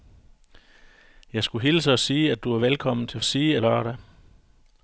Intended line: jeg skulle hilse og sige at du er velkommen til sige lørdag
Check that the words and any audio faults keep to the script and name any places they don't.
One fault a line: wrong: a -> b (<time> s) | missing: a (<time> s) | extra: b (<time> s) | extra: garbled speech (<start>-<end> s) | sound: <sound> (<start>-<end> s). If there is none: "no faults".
no faults